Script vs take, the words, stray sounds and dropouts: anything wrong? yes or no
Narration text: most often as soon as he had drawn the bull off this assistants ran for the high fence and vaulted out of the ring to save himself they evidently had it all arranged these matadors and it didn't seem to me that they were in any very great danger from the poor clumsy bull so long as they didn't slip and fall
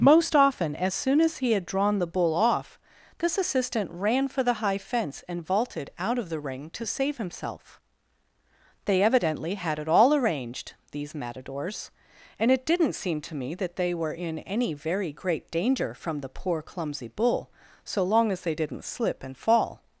yes